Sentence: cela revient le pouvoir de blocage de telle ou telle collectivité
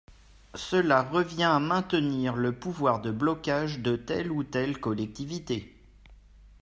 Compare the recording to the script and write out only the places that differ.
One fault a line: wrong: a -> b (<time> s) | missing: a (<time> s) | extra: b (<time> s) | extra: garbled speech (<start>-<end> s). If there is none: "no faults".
extra: à maintenir (1.4 s)